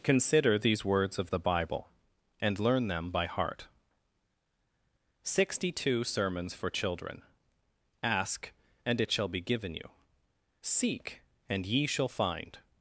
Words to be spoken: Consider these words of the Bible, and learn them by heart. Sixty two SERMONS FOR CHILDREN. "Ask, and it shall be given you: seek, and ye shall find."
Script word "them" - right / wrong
right